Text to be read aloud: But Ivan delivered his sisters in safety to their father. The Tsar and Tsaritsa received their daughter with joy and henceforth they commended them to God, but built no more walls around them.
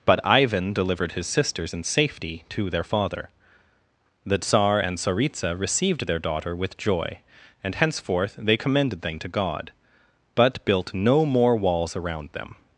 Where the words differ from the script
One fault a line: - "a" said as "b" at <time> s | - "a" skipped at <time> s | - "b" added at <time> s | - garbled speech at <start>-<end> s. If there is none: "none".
none